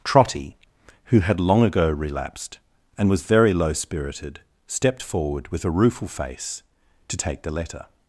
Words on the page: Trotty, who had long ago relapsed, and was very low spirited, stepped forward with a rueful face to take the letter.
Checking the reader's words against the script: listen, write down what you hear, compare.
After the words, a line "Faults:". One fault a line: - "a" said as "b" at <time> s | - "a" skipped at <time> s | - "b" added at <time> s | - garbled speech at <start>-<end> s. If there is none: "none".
Trotty, who had long ago relapsed, and was very low spirited, stepped forward with a rueful face to take the letter.
Faults:
none